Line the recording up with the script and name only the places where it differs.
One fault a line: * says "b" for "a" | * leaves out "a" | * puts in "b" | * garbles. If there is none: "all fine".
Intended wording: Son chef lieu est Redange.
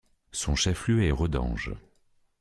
all fine